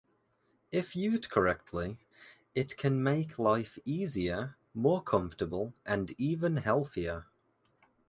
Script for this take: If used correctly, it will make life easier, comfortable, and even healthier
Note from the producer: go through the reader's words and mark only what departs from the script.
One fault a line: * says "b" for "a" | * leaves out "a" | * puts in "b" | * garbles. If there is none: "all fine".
* says "can" for "will"
* puts in "more"